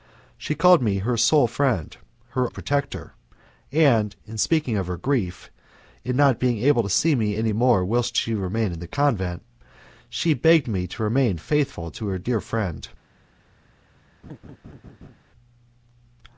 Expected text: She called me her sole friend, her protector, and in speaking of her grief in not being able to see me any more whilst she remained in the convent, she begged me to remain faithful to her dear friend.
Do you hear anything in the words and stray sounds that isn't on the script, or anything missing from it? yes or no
yes